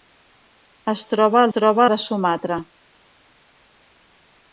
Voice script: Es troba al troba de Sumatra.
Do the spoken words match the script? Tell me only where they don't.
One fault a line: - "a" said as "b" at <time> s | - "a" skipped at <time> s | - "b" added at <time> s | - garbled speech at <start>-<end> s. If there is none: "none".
none